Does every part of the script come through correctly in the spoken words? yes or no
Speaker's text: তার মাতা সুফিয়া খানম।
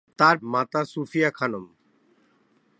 yes